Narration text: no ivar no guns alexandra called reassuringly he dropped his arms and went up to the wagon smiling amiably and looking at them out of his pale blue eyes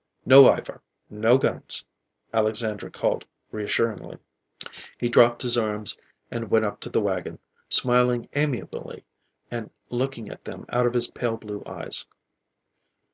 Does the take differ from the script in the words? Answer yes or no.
no